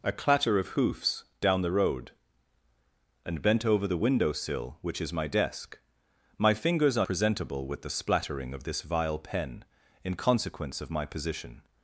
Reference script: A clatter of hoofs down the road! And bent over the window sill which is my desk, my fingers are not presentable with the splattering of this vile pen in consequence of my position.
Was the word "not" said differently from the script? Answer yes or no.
yes